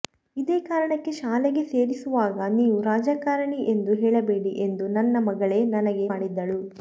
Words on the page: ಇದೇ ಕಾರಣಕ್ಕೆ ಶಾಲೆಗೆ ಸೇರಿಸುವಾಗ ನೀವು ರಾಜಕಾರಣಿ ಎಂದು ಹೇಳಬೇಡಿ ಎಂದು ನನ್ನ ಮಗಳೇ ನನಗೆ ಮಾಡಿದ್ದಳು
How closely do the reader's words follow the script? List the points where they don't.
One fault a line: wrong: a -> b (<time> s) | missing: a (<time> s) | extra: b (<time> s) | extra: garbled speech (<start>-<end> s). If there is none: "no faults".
no faults